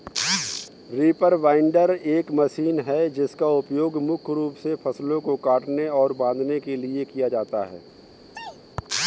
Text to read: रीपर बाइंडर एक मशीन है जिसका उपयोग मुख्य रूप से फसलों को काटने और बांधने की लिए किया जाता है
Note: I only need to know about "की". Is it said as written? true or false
false